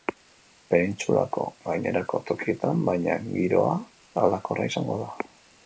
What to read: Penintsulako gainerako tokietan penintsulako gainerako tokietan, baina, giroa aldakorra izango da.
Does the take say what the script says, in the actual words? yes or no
no